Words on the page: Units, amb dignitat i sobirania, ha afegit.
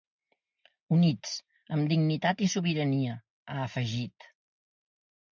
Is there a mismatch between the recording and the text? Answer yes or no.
no